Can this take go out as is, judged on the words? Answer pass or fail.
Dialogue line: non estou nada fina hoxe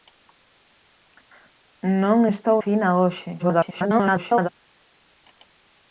fail